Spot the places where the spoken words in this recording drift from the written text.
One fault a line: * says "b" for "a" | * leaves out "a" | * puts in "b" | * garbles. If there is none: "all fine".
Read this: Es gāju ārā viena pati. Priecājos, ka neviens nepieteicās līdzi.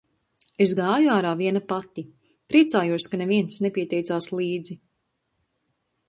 all fine